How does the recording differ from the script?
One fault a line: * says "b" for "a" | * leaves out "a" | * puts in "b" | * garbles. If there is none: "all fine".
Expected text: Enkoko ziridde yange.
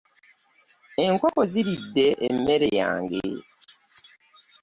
* puts in "emmere"